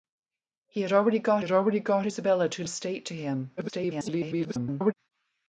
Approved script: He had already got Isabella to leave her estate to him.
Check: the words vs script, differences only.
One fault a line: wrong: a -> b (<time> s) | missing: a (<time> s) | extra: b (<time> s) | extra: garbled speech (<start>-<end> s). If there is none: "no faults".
extra: had already got (1.4 s)
missing: leave her (2.6 s)
extra: garbled speech (3.6-4.9 s)